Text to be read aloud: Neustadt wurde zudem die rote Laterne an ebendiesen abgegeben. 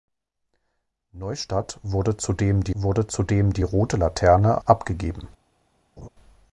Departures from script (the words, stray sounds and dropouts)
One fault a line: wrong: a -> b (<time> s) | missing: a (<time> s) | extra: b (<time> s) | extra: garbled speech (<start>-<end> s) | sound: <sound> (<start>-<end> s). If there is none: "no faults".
extra: wurde zudem die (2.7 s)
missing: an ebendiesen (4.6 s)
sound: laugh (6.0-6.1 s)